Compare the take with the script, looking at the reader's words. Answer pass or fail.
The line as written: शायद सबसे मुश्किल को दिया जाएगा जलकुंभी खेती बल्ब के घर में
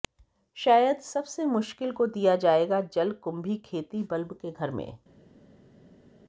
pass